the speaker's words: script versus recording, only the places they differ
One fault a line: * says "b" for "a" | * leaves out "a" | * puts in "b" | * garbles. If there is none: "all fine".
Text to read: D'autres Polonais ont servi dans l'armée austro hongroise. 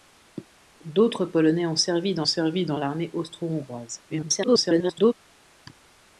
* puts in "servi dans"
* garbles